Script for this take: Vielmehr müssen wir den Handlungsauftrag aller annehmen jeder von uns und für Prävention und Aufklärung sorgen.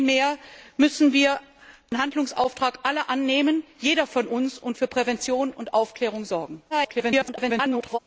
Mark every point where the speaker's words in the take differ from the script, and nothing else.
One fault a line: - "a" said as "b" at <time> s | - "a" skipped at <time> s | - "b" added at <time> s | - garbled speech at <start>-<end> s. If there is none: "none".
- garbled speech at 6.7-8.0 s